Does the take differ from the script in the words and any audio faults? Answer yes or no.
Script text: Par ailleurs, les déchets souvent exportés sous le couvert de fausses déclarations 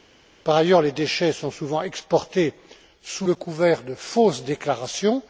yes